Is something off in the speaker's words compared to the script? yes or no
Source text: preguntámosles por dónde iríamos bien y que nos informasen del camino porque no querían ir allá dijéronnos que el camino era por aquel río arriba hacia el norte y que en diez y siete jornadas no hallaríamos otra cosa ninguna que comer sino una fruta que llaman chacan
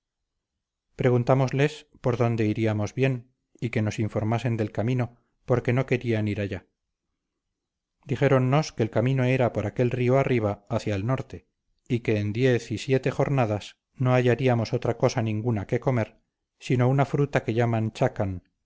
no